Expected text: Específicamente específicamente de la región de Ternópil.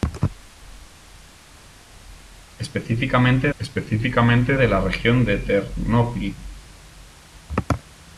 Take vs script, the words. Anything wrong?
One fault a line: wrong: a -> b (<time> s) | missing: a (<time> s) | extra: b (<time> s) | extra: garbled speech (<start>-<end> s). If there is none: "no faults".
no faults